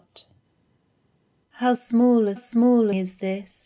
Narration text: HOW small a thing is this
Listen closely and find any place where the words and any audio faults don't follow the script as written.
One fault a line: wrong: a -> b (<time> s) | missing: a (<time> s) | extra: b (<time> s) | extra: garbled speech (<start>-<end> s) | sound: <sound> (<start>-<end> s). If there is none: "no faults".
wrong: thing -> small (2.4 s)